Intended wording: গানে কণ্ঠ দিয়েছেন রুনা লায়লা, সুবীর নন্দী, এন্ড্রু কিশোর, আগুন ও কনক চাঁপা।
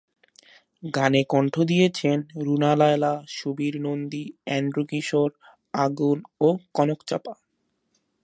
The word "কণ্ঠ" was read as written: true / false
true